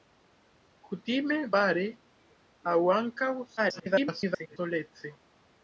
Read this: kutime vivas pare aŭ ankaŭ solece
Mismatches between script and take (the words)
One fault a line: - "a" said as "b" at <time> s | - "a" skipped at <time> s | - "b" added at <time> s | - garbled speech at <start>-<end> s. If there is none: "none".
- "vivas" skipped at 1.4 s
- garbled speech at 3.6-4.6 s